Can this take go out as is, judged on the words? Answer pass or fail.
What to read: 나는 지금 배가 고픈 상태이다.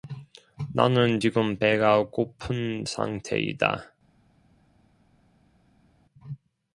pass